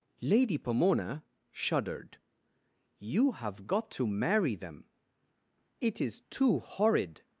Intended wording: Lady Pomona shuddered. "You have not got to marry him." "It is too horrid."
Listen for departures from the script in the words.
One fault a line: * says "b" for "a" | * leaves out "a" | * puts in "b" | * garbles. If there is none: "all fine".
* leaves out "not"
* says "them" for "him"